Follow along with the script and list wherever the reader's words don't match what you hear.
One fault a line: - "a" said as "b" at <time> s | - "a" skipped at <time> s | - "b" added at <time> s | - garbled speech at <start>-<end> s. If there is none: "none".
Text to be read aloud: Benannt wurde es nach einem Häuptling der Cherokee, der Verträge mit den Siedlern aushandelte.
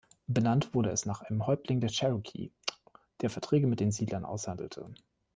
none